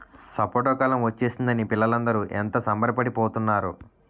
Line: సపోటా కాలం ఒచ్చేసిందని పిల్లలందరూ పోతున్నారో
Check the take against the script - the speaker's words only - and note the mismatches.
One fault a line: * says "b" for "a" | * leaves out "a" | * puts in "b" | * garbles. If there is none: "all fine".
* puts in "ఎంత సంబరపడి"